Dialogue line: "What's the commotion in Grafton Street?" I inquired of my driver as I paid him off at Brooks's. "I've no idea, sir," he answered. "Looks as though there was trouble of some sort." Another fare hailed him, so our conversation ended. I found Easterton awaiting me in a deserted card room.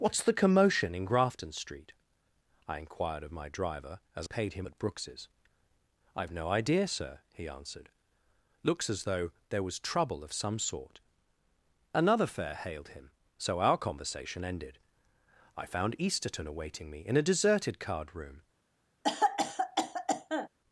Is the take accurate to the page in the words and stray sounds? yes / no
no